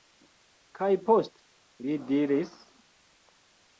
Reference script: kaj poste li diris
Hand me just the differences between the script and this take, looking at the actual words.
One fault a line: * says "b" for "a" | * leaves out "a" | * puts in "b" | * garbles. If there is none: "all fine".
all fine